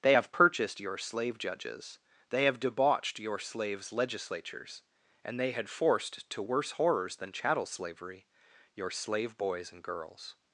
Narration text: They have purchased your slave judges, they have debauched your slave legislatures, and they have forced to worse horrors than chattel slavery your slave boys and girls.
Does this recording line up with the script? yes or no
no